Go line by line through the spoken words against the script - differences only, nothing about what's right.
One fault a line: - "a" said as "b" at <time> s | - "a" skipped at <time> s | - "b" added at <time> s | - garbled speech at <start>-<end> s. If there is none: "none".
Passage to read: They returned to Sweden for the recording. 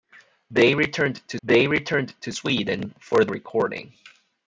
- "they returned to" added at 1.4 s
- "the" skipped at 3.3 s